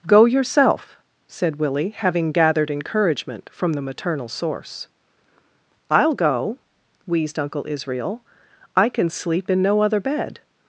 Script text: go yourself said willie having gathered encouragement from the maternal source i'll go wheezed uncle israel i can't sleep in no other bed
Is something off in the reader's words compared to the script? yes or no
yes